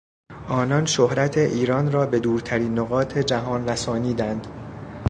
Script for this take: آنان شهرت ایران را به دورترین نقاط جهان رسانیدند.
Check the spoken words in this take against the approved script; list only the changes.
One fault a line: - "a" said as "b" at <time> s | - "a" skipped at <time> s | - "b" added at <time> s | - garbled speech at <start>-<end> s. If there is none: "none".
none